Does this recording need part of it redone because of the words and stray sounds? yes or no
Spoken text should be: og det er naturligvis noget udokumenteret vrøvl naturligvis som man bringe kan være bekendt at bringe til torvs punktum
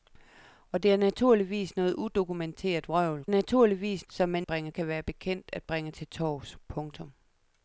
no